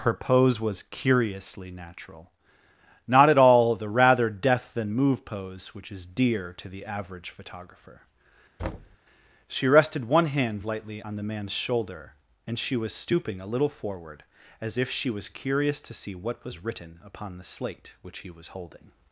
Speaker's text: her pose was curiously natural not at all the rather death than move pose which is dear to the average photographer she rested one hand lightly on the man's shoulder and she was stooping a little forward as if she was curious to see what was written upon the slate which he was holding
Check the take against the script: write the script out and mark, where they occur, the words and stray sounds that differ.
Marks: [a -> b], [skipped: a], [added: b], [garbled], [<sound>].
her pose was curiously natural not at all the rather death than move pose which is dear to the average photographer [thud] she rested one hand lightly on the man's shoulder and she was stooping a little forward as if she was curious to see what was written upon the slate which he was holding